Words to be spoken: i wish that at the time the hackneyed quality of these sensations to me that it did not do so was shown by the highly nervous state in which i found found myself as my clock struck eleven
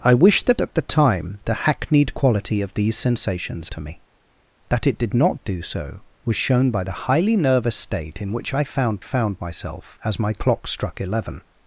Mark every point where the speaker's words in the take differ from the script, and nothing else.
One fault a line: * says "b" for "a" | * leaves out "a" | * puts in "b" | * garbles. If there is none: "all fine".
all fine